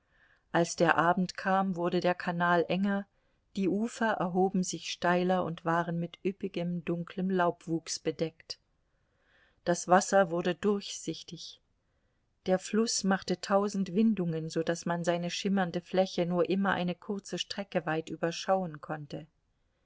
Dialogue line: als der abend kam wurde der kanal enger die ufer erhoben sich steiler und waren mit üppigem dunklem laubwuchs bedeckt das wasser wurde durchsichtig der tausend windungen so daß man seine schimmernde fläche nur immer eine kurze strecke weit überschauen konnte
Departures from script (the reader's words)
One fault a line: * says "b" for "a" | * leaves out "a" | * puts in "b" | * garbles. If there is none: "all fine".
* puts in "fluß machte"